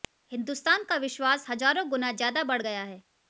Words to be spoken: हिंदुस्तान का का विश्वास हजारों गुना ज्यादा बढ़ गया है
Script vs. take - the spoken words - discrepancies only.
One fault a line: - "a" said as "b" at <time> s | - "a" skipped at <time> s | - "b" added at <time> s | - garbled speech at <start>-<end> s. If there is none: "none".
- "का" skipped at 0.9 s